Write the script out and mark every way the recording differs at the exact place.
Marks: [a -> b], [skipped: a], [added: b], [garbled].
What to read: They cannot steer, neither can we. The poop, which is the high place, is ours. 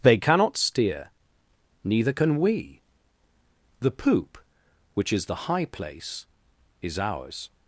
They cannot steer, neither can we. The poop, which is the high place, is ours.